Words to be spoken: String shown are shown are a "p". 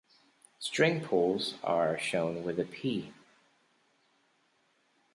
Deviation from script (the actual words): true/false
true